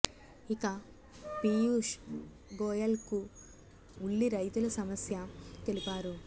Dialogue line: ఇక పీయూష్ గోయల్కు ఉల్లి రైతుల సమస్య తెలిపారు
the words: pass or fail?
pass